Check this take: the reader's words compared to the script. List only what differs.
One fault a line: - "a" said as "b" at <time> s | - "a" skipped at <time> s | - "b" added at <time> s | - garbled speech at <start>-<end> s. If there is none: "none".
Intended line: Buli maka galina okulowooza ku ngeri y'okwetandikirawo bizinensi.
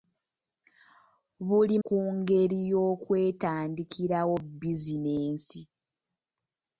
- "maka galina okulowooza" skipped at 1.8 s